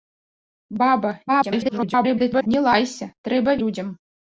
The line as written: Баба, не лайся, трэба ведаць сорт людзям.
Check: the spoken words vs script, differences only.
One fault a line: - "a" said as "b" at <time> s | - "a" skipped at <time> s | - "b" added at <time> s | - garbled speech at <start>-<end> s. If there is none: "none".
- garbled speech at 1.3-2.5 s
- "ведаць сорт" skipped at 3.6 s